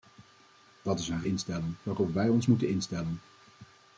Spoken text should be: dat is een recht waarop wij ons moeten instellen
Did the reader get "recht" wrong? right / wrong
wrong